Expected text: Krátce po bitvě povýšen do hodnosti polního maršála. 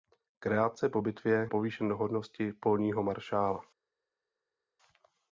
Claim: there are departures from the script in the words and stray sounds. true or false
false